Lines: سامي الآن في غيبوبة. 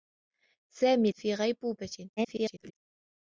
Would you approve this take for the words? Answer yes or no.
no